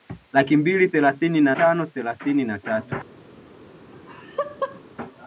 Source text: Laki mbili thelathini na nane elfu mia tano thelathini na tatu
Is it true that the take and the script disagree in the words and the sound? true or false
true